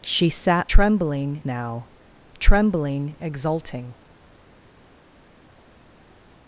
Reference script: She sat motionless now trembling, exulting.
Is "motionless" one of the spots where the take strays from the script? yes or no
yes